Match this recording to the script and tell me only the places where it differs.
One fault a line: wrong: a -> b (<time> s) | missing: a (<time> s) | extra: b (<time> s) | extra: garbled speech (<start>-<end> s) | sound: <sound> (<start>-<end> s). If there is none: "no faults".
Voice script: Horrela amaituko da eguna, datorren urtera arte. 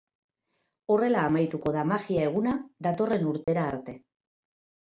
extra: magia (1.9 s)
sound: dropout (3.4-3.5 s)